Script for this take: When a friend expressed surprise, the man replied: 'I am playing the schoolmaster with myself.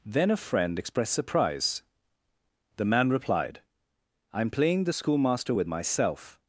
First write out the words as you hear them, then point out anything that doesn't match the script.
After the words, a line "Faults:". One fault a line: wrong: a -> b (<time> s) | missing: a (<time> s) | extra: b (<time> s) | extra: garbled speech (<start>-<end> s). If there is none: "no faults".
Then a friend expressed surprise, the man replied: 'I am playing the schoolmaster with myself.
Faults:
wrong: When -> Then (0.1 s)